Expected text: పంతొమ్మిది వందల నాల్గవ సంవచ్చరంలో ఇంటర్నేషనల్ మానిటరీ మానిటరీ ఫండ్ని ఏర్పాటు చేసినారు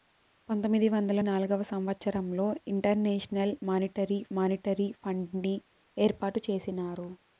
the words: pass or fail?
pass